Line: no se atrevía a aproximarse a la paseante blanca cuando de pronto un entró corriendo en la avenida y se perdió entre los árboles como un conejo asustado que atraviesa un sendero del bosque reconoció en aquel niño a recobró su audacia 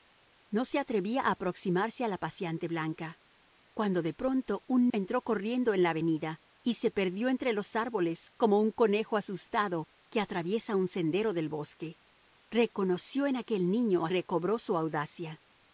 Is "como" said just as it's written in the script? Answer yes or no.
yes